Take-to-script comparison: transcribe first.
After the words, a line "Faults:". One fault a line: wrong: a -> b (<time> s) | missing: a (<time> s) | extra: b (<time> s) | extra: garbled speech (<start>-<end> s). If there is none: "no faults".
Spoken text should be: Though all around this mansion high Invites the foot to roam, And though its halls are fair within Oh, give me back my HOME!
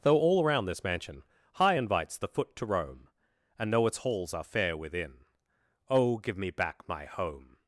Though all around this mansion high Invites the foot to roam, And know its halls are fair within Oh, give me back my HOME!
Faults:
wrong: though -> know (3.7 s)